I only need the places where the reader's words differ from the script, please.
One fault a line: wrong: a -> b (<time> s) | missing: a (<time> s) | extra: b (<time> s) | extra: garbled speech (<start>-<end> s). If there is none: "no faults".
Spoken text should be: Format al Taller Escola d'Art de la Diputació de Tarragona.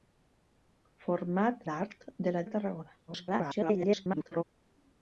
missing: al Taller Escola (1.6 s)
missing: Diputació (2.5 s)
extra: garbled speech (3.1-4.4 s)